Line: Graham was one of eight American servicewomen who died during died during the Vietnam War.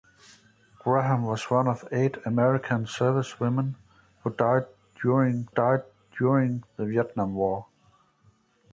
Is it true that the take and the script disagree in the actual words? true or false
false